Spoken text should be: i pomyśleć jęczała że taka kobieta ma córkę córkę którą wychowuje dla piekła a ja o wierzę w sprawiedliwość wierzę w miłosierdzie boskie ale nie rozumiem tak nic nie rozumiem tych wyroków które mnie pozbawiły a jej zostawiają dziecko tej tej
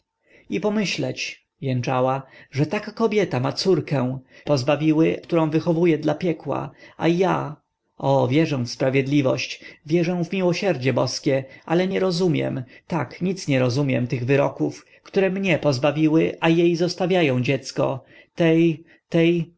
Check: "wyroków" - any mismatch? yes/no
no